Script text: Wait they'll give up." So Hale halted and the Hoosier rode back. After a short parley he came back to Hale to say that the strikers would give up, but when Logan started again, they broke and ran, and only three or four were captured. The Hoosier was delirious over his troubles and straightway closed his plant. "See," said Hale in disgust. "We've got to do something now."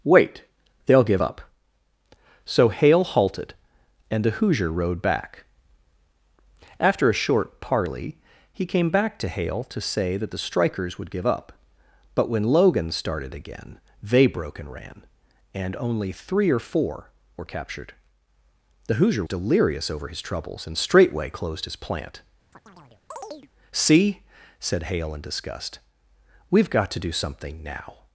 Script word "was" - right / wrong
wrong